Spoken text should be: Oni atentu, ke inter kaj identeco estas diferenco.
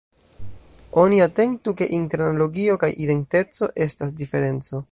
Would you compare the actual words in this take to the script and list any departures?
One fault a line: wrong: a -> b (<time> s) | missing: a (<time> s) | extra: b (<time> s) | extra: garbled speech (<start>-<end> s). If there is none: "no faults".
extra: analogio (2.3 s)